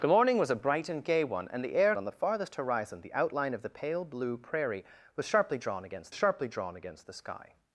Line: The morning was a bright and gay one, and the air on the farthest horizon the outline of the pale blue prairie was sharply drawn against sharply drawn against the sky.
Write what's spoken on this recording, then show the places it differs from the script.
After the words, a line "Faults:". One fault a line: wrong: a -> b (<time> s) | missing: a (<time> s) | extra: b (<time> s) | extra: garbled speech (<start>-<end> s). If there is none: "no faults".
The morning was a bright and gay one, and the air on the farthest horizon the outline of the pale blue prairie was sharply drawn against sharply drawn against the sky.
Faults:
no faults